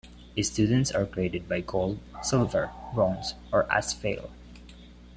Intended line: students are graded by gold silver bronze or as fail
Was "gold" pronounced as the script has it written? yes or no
yes